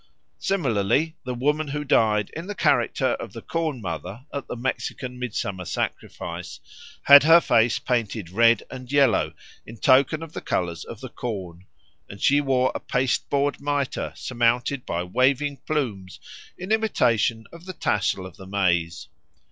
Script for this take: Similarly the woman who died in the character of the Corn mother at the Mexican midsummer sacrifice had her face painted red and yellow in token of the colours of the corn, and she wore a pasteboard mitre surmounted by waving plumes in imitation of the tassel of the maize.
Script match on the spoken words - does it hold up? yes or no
yes